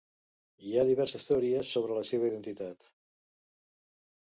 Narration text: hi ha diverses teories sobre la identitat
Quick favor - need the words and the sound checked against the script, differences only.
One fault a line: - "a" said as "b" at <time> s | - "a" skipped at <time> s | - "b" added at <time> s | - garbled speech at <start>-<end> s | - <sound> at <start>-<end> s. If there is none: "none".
- "seva" added at 2.1 s